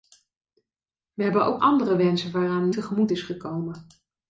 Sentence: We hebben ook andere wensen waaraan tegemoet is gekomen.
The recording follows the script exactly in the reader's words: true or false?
true